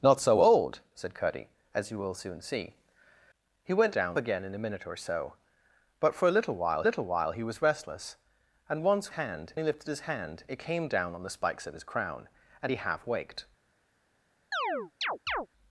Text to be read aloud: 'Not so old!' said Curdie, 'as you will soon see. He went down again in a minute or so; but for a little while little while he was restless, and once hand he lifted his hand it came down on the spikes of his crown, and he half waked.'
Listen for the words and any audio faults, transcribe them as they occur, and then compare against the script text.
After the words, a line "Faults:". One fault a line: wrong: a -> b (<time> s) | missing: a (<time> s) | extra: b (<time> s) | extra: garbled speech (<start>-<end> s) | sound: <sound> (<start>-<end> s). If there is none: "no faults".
'Not so old!' said Curdie, 'as you will soon see. He went down again in a minute or so; but for a little while little while he was restless, and once hand he lifted his hand it came down on the spikes of his crown, and he half waked.'
Faults:
sound: chirp (14.5-15.5 s)